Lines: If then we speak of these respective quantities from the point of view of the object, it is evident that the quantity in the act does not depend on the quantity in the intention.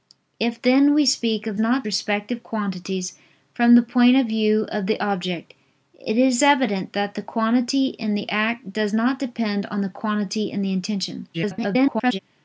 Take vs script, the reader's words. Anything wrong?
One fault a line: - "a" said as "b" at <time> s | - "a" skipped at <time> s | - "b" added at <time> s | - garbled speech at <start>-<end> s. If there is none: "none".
- "these" said as "not" at 1.6 s
- garbled speech at 11.3-12.2 s